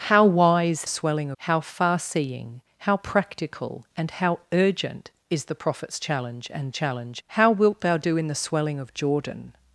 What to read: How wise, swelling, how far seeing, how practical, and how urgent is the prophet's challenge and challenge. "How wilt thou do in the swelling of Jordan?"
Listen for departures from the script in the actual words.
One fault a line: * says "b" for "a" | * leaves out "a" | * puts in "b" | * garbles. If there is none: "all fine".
all fine